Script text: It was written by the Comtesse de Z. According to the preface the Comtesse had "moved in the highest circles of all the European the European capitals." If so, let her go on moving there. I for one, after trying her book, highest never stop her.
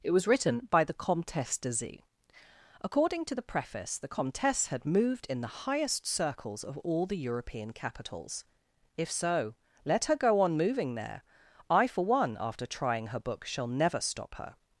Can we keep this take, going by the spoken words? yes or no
no